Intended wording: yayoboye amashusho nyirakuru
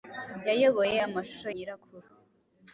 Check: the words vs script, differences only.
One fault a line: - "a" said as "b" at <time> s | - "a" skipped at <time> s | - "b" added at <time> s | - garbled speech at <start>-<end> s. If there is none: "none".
none